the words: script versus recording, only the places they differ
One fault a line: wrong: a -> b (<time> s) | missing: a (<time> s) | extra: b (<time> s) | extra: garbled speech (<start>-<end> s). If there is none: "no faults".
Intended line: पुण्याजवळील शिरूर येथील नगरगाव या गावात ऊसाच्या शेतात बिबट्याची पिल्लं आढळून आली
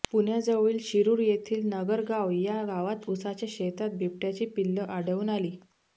no faults